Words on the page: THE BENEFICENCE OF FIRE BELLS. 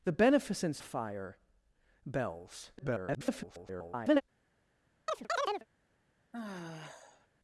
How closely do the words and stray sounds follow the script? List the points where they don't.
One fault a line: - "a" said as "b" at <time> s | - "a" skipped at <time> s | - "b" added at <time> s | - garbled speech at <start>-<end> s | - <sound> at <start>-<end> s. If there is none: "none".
- "OF" skipped at 0.8 s
- garbled speech at 2.8-4.2 s
- chirp at 5.1-5.7 s
- sigh at 6.3-7.3 s